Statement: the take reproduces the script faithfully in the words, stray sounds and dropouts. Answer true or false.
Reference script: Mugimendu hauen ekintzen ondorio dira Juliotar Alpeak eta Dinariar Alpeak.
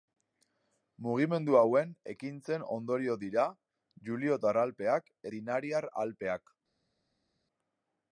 false